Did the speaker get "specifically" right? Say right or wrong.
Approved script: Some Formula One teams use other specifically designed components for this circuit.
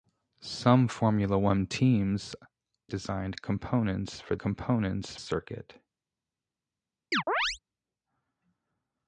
wrong